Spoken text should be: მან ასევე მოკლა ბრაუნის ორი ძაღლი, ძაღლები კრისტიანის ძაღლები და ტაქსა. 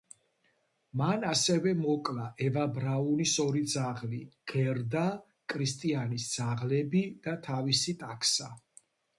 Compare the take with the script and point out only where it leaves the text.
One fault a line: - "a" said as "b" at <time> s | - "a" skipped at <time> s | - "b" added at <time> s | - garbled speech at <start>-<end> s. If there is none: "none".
- "ევა" added at 2.5 s
- "ძაღლები" said as "გერდა" at 4.5 s
- "თავისი" added at 7.5 s